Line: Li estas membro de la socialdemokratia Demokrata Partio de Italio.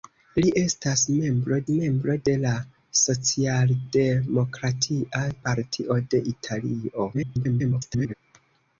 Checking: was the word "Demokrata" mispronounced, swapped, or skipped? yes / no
yes